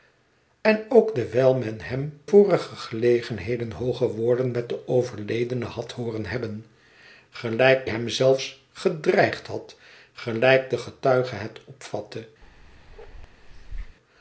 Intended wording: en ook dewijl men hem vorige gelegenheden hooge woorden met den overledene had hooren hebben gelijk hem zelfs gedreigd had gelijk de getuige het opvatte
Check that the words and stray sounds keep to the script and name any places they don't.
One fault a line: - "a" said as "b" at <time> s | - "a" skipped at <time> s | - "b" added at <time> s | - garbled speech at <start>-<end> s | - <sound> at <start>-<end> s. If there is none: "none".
- bark at 12.4-14.0 s